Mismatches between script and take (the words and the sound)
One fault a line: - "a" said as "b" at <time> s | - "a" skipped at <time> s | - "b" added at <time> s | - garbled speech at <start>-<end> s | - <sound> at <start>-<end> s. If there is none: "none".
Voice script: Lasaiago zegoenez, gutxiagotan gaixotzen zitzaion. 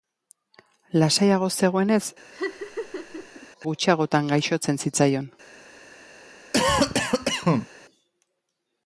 - laugh at 2.3-3.5 s
- cough at 6.5-7.7 s